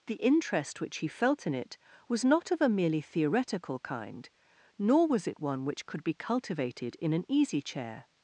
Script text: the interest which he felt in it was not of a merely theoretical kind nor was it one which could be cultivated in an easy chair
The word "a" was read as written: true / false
true